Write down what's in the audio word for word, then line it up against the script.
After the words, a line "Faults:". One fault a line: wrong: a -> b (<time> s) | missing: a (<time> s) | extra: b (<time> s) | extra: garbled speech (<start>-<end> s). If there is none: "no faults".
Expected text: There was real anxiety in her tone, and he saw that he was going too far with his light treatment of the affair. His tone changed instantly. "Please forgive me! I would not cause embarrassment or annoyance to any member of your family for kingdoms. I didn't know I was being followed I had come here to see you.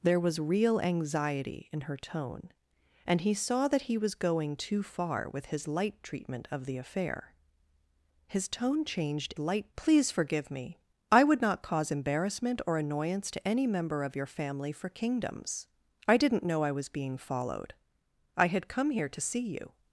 There was real anxiety in her tone, and he saw that he was going too far with his light treatment of the affair. His tone changed light. "Please forgive me! I would not cause embarrassment or annoyance to any member of your family for kingdoms. I didn't know I was being followed I had come here to see you.
Faults:
wrong: instantly -> light (9.4 s)